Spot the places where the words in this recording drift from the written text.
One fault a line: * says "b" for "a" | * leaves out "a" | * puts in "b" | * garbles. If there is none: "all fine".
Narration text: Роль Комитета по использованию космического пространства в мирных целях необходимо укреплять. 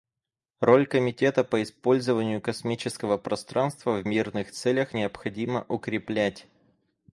all fine